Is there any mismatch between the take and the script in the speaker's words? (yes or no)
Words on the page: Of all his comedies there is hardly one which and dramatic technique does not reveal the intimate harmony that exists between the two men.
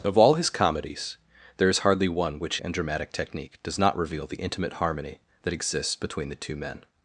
no